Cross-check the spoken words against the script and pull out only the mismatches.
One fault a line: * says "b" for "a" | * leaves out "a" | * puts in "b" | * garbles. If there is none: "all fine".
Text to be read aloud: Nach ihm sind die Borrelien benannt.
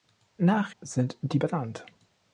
* leaves out "ihm"
* leaves out "Borrelien"